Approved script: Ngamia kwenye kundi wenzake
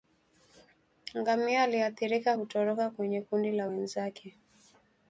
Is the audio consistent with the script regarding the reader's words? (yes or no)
no